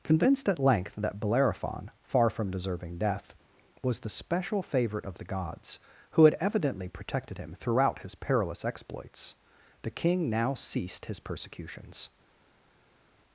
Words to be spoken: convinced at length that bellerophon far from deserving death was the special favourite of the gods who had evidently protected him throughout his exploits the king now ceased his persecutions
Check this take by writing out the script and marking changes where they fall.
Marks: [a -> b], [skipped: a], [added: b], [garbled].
convinced at length that bellerophon far from deserving death was the special favourite of the gods who had evidently protected him throughout his [added: perilous] exploits the king now ceased his persecutions